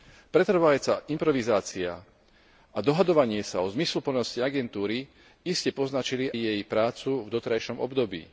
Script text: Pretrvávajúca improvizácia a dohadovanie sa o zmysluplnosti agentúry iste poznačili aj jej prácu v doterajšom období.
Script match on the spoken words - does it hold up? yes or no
no